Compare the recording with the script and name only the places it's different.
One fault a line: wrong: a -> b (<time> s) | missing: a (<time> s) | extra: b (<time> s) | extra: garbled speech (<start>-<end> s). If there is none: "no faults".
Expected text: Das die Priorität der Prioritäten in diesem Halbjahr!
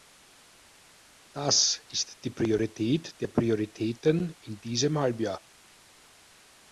extra: ist (1.9 s)